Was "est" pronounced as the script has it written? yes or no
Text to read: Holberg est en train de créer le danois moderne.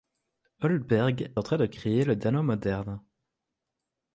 no